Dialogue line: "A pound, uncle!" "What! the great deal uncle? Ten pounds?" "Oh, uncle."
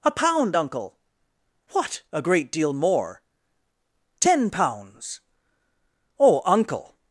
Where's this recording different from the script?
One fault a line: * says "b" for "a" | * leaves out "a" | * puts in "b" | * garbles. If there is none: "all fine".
* says "a" for "the"
* says "more" for "uncle"